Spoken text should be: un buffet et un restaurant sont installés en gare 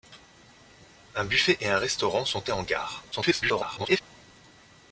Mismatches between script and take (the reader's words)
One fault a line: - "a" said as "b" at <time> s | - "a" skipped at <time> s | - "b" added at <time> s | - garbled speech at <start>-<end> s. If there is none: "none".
- "installés" skipped at 2.5 s
- garbled speech at 3.1-4.0 s